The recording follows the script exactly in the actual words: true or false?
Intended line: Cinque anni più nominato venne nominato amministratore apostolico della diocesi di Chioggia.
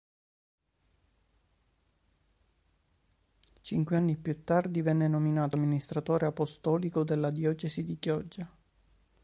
false